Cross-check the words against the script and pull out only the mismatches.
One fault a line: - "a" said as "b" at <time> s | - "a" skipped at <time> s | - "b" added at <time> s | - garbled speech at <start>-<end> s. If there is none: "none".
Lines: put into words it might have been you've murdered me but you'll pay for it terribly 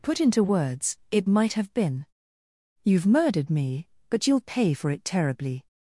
none